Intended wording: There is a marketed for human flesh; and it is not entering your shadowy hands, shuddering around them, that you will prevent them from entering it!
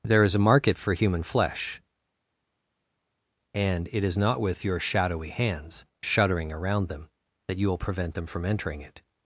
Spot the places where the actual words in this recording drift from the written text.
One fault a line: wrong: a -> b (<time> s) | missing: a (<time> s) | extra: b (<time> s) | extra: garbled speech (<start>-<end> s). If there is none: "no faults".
wrong: marketed -> market (0.4 s)
wrong: entering -> with (4.4 s)